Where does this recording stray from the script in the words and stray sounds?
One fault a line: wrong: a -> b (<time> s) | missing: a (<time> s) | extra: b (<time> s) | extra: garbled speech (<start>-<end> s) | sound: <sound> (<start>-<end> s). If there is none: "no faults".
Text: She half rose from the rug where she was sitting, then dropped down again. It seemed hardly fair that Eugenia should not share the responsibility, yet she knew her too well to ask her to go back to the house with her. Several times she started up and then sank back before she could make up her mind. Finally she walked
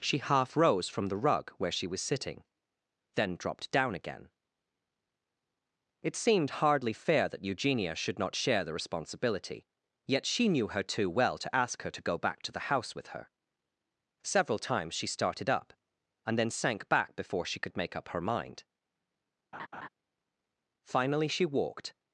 sound: laugh (19.5-19.9 s)